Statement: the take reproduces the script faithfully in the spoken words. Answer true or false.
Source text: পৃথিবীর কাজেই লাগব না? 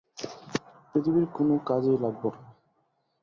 false